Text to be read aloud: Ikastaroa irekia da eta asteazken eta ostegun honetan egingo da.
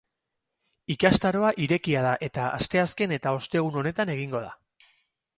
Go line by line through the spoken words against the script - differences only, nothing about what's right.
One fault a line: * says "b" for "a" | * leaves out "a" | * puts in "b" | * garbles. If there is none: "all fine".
all fine